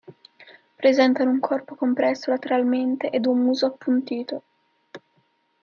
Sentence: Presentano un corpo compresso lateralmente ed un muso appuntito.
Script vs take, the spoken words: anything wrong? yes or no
no